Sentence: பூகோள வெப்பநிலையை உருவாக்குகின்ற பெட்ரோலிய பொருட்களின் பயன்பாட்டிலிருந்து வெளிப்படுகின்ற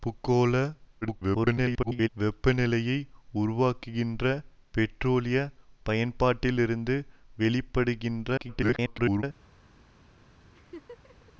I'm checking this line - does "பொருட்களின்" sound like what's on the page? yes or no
no